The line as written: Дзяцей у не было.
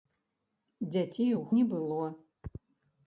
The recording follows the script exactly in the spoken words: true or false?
true